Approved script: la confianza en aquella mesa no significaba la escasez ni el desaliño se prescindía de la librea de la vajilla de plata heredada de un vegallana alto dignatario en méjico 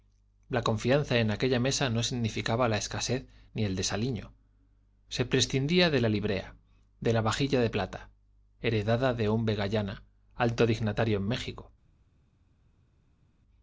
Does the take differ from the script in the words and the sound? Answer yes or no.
no